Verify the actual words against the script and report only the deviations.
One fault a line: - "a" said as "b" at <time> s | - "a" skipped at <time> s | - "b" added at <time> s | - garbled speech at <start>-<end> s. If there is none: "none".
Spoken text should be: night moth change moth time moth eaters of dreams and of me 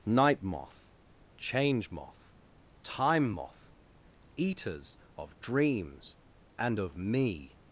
none